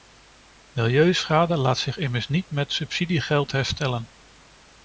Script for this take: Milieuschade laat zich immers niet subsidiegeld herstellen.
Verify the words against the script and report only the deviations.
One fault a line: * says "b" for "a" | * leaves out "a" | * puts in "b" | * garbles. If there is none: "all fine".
* puts in "met"